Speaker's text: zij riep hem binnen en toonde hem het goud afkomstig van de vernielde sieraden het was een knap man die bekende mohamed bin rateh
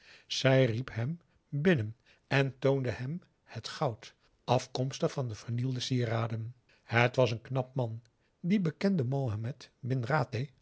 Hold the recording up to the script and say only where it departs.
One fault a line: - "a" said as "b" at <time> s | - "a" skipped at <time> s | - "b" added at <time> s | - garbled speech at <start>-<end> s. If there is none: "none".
none